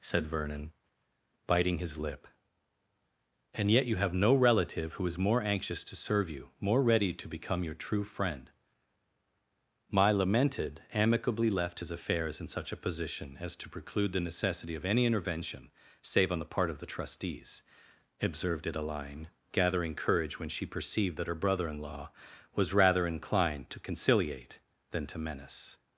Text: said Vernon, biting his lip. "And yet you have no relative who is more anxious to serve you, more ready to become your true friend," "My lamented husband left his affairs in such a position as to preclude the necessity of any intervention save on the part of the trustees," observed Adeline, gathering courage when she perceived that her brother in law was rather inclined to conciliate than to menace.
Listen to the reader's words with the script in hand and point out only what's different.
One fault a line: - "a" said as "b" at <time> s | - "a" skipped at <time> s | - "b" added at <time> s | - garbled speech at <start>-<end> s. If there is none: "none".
- "husband" said as "amicably" at 10.9 s